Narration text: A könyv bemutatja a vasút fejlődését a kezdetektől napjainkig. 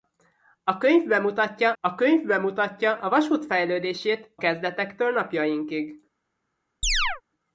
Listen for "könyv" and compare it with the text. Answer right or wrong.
right